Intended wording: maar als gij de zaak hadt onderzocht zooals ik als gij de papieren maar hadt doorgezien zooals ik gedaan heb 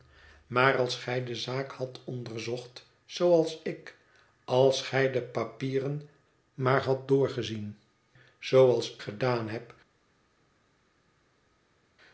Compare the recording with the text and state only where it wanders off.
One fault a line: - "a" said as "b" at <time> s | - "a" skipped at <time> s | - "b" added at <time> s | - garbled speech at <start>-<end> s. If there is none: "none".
- "ik" skipped at 9.0 s